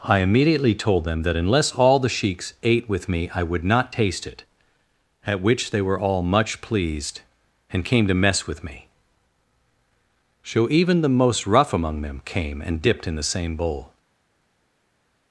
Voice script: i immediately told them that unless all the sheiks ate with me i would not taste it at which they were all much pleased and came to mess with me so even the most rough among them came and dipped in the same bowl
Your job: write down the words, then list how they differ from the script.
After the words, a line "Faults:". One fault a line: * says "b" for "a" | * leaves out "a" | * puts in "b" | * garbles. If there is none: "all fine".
i immediately told them that unless all the sheiks ate with me i would not taste it at which they were all much pleased and came to mess with me so even the most rough among them came and dipped in the same bowl
Faults:
all fine